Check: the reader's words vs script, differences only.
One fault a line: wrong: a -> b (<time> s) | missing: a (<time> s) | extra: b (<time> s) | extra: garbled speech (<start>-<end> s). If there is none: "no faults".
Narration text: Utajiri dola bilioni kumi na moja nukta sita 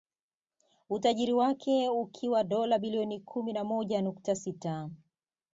extra: wake ukiwa (1.3 s)